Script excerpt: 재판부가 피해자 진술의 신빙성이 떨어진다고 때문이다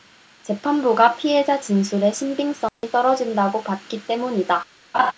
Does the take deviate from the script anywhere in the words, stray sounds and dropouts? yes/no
yes